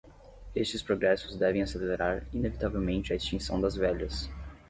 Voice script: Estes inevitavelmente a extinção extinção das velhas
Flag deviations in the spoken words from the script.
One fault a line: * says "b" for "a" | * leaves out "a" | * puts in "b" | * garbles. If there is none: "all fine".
* puts in "progressos devem acelerar"
* leaves out "extinção"